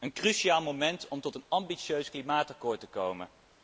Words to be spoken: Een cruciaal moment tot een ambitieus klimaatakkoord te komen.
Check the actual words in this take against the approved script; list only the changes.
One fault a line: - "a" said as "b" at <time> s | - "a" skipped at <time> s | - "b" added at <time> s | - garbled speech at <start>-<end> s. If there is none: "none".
- "om" added at 1.1 s